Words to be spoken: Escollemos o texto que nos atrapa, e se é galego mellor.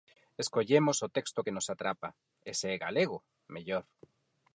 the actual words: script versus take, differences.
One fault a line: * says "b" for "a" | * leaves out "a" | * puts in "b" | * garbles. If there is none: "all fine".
all fine